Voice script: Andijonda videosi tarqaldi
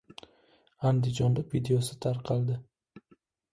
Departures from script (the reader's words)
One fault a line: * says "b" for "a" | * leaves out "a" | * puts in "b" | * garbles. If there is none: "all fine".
all fine